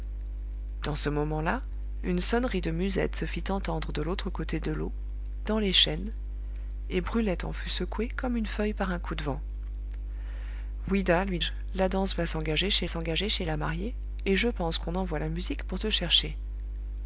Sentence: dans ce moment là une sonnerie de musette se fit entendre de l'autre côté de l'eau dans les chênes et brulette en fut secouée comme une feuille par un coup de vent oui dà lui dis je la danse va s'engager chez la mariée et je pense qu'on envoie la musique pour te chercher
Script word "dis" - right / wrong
wrong